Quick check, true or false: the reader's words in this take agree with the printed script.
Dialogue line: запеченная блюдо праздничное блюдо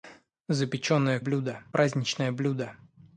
true